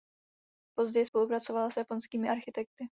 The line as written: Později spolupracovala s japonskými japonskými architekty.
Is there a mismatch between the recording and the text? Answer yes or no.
yes